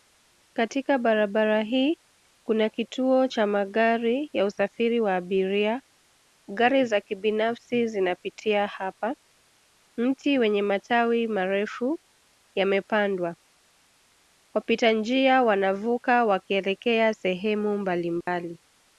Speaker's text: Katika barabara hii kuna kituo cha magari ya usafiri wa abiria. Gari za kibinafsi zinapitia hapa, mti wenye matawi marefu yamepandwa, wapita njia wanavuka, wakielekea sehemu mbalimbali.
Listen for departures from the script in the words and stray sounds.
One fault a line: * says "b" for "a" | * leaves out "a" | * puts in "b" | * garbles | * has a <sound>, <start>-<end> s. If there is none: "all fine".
* has a dropout, 18.2-18.3 s